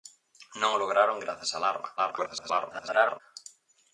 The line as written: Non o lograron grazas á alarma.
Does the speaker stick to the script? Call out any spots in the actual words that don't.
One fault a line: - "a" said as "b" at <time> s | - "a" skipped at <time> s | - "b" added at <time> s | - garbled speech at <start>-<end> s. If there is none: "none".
- garbled speech at 2.0-3.2 s